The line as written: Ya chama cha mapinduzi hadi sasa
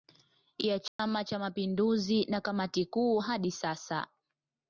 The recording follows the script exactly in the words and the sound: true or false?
false